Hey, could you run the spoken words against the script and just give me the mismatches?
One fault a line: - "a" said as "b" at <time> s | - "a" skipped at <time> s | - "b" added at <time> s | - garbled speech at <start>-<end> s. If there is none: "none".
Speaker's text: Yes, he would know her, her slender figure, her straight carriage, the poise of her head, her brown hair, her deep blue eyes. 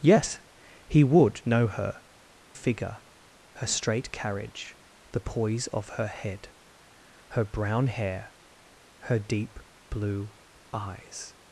- "her slender" skipped at 2.0 s